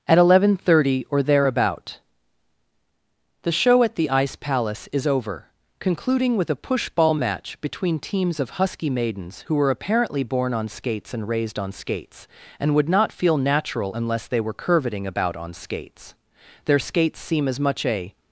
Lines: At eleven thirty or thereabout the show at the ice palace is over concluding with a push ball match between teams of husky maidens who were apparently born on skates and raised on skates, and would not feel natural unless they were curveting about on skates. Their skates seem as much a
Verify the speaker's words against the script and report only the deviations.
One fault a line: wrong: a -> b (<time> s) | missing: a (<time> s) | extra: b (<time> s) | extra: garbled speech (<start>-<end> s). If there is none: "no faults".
no faults